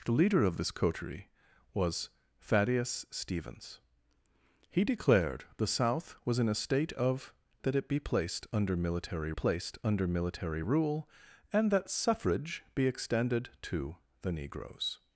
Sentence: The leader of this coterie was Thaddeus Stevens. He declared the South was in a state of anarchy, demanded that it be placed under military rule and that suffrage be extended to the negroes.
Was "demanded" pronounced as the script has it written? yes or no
no